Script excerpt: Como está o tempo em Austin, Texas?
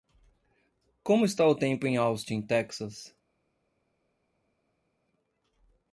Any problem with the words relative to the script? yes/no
no